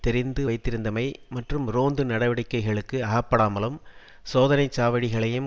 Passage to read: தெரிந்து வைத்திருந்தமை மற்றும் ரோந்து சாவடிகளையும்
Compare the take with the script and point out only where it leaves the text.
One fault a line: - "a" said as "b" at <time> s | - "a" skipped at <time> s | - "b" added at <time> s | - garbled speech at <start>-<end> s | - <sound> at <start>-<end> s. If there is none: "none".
- "நடவடிக்கைகளுக்கு அகப்படாமலும் சோதனை" added at 2.0 s